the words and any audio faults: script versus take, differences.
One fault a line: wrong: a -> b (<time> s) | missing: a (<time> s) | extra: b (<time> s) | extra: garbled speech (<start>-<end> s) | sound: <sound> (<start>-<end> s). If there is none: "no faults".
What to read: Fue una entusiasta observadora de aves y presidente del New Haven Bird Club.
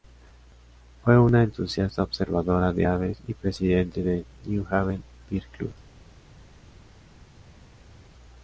no faults